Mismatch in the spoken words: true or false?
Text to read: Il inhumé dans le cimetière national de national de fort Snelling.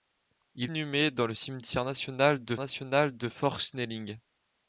false